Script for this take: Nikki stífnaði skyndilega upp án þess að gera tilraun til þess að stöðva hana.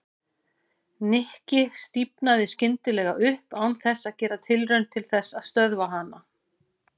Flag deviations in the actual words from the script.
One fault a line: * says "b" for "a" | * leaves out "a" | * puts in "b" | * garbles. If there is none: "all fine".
all fine